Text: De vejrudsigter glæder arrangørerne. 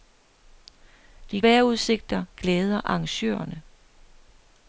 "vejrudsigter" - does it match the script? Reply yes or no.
yes